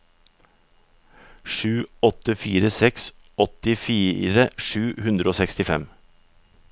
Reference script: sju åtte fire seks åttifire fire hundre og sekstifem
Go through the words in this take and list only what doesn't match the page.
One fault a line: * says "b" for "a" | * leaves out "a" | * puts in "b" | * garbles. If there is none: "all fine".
* says "sju" for "fire"